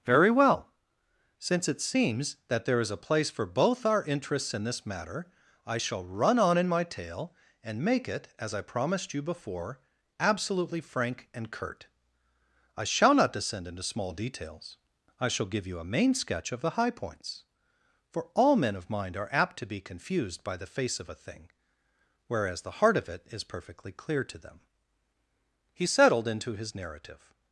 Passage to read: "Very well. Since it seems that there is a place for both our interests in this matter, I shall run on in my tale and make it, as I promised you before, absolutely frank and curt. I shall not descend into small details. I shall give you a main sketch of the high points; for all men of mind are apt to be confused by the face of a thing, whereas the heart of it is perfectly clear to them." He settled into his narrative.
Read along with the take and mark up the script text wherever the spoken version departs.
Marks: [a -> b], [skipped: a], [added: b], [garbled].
"Very well. Since it seems that there is a place for both our interests in this matter, I shall run on in my tale and make it, as I promised you before, absolutely frank and curt. I shall not descend into small details. I shall give you a main sketch of the high points; for all men of mind are apt to be confused by the face of a thing, whereas the heart of it is perfectly clear to them." He settled into his narrative.